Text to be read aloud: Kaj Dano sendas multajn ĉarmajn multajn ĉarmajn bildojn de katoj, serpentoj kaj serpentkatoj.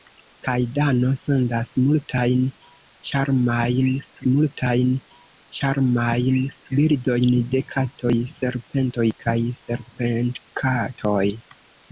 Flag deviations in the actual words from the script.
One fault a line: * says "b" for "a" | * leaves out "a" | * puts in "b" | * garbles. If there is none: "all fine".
all fine